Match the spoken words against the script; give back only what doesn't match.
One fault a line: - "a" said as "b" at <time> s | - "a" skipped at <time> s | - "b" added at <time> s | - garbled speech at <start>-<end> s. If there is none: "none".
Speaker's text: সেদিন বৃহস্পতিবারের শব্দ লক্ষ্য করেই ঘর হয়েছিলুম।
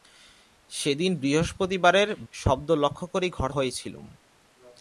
none